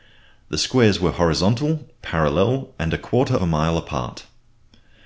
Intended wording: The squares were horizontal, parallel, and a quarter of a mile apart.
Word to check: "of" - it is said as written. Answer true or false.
false